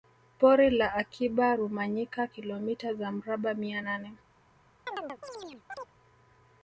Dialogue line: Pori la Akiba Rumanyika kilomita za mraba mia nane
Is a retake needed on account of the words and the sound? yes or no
yes